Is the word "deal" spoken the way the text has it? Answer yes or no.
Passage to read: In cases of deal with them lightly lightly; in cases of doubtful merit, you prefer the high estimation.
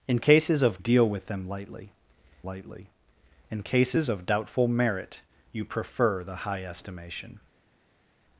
yes